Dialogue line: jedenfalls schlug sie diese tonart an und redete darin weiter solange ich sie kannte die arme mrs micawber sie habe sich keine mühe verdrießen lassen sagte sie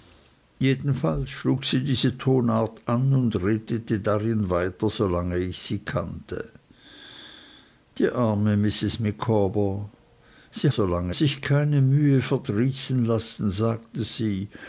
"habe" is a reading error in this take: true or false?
true